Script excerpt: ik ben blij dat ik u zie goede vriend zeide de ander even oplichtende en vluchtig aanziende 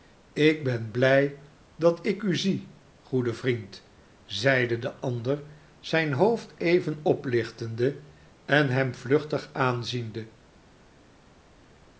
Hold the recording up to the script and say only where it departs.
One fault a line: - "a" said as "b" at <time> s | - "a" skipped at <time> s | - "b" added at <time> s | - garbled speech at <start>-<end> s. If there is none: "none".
- "zijn hoofd" added at 5.8 s
- "hem" added at 8.7 s